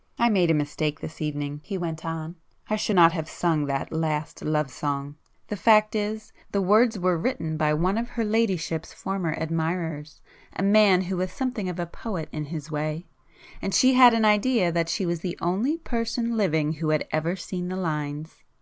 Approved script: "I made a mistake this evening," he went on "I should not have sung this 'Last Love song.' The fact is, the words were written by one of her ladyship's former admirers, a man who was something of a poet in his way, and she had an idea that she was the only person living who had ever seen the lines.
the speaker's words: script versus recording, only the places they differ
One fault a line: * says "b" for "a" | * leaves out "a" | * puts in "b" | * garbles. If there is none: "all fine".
* says "that" for "this"